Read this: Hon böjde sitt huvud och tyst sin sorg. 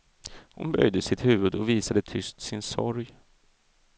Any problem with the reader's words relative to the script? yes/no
yes